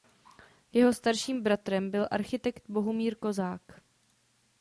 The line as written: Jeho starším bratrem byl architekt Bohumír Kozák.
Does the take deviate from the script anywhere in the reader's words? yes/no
no